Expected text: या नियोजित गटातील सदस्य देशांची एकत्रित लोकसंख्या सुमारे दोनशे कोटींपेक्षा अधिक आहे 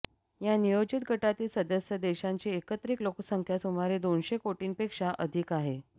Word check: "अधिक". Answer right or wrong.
right